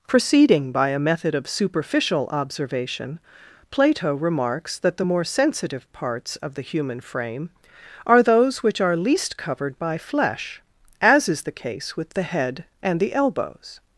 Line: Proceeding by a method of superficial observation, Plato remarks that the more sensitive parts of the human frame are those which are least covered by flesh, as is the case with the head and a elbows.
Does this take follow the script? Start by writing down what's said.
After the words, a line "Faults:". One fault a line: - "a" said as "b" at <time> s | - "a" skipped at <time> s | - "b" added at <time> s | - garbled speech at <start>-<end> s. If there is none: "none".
Proceeding by a method of superficial observation, Plato remarks that the more sensitive parts of the human frame are those which are least covered by flesh, as is the case with the head and the elbows.
Faults:
- "a" said as "the" at 13.0 s